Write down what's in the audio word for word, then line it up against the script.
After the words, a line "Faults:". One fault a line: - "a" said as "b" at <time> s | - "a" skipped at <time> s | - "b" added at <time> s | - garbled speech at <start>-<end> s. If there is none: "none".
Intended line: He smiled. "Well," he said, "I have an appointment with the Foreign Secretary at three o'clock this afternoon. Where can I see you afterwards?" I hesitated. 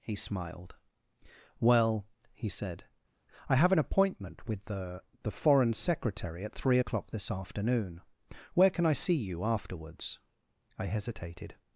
He smiled. "Well," he said, "I have an appointment with the the Foreign Secretary at three o'clock this afternoon. Where can I see you afterwards?" I hesitated.
Faults:
- "the" added at 5.2 s